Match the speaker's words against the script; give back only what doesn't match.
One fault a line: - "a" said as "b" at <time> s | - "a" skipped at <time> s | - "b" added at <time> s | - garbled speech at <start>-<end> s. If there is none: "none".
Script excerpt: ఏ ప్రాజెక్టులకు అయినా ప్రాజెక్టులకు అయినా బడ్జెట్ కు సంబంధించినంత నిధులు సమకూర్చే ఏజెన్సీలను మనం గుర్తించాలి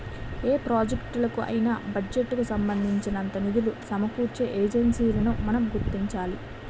- "ప్రాజెక్టులకు అయినా" skipped at 1.7 s